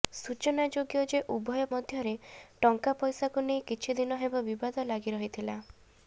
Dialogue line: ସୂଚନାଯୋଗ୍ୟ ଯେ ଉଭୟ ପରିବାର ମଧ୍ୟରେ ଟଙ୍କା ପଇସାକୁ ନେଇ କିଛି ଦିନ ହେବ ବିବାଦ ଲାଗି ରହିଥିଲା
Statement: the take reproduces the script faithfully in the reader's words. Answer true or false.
false